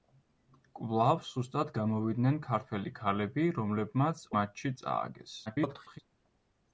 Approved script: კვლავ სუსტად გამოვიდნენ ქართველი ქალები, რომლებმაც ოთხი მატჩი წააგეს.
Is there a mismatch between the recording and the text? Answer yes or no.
yes